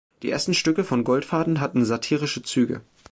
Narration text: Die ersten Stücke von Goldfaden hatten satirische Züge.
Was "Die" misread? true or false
false